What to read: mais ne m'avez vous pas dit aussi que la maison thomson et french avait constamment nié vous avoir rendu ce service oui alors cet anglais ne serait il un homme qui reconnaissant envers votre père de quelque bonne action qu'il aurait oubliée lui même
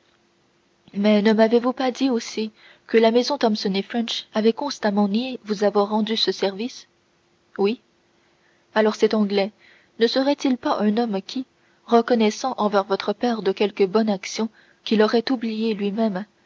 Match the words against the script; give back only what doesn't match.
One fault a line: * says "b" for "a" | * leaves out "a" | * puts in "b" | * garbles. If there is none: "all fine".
* puts in "pas"